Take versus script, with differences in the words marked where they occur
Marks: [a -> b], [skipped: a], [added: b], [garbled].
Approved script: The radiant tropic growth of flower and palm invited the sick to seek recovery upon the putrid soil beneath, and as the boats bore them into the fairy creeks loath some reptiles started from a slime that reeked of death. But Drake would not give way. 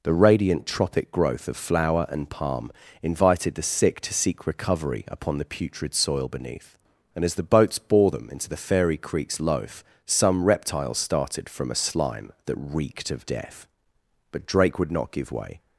The radiant tropic growth of flower and palm invited the sick to seek recovery upon the putrid soil beneath, and as the boats bore them into the fairy creeks [loath -> loaf] some reptiles started from a slime that reeked of death. But Drake would not give way.